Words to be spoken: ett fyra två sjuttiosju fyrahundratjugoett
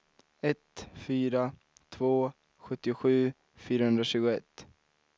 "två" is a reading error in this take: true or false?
false